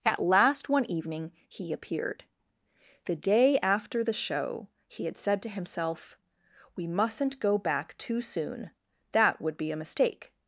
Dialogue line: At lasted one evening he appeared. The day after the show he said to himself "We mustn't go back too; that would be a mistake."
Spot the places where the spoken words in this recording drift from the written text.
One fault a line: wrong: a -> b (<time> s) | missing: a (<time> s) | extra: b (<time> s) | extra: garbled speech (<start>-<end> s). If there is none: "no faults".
wrong: lasted -> last (0.2 s)
extra: had (5.0 s)
extra: soon (8.2 s)